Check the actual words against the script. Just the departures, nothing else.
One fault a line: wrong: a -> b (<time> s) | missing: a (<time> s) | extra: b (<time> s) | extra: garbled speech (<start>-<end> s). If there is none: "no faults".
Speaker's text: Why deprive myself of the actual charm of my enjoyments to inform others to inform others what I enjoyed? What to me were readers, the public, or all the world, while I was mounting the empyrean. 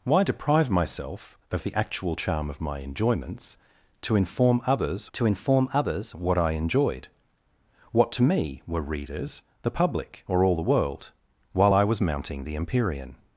no faults